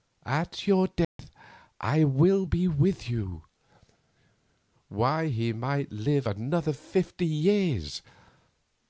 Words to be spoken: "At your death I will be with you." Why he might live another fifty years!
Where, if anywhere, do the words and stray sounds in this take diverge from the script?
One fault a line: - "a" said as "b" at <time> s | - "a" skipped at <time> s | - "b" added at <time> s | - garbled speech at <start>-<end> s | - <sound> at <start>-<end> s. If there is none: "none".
- dropout at 1.0-1.2 s